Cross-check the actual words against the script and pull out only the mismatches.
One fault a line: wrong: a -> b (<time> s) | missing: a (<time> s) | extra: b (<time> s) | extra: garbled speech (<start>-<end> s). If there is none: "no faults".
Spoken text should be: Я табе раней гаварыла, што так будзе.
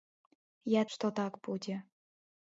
missing: табе раней гаварыла (0.8 s)